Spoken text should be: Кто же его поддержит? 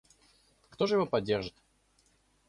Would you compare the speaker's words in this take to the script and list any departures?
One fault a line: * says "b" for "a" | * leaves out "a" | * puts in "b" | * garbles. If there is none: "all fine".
all fine